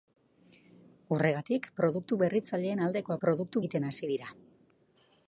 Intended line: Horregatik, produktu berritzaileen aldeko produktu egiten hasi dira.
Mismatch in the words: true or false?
false